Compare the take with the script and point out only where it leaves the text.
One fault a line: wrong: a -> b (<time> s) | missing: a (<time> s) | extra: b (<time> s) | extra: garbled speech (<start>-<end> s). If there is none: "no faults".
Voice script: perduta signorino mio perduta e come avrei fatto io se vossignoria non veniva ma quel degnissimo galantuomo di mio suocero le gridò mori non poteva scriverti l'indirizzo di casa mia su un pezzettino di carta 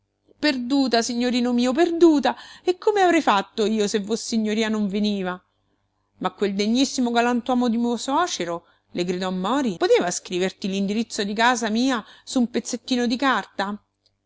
missing: non (9.8 s)